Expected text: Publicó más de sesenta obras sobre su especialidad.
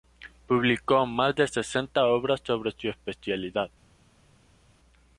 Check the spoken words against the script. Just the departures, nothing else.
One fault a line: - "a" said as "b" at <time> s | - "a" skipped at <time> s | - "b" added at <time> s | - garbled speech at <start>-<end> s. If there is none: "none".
none